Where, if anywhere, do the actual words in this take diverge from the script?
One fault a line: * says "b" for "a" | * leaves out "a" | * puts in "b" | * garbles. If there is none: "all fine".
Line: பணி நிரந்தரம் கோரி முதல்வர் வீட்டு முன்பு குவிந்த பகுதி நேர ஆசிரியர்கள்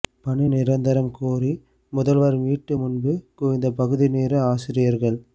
all fine